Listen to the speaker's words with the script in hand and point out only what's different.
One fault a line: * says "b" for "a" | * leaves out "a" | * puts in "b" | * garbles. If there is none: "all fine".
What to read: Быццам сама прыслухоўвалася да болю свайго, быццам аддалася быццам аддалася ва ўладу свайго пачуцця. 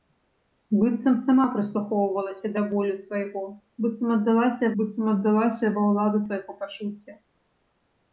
all fine